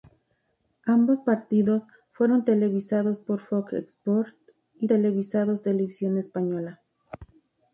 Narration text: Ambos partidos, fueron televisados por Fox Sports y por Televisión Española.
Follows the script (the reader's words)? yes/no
no